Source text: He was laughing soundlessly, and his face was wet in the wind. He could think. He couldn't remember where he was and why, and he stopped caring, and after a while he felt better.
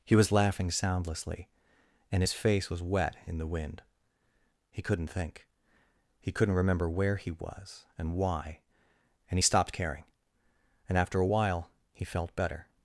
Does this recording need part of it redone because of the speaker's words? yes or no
yes